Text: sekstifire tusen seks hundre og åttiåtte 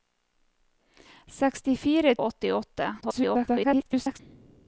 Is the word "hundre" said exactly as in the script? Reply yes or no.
no